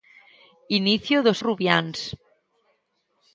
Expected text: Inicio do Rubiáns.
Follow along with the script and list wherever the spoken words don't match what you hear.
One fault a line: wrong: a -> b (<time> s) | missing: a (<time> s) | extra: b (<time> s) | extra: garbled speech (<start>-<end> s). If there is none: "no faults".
no faults